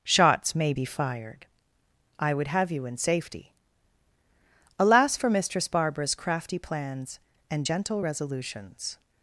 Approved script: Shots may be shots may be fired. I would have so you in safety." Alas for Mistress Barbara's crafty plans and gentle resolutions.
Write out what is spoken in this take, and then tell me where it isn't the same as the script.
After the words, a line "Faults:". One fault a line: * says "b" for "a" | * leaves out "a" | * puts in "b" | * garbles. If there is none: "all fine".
Shots may be fired. I would have you in safety." Alas for Mistress Barbara's crafty plans and gentle resolutions.
Faults:
* leaves out "shots may be"
* leaves out "so"